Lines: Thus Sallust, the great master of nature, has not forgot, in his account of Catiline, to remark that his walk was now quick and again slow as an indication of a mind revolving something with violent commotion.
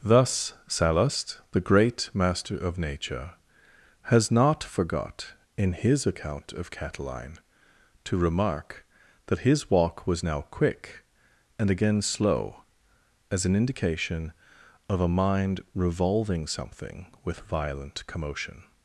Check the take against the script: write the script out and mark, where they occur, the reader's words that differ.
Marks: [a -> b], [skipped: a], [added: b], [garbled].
Thus Sallust, the great master of nature, has not forgot, in his account of Catiline, to remark that his walk was now quick and again slow as an indication of a mind revolving something with violent commotion.